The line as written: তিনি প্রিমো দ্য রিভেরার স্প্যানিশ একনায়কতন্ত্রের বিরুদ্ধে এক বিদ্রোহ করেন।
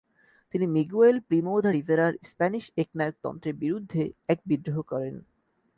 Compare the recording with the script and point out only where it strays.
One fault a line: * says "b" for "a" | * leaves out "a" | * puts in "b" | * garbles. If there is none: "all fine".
* puts in "মিগুয়েল"